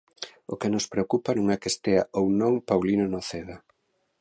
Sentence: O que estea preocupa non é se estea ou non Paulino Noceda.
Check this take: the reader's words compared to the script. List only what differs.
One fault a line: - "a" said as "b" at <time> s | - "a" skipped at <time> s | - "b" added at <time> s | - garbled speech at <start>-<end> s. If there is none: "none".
- "estea" said as "nos" at 0.7 s
- "se" said as "que" at 1.6 s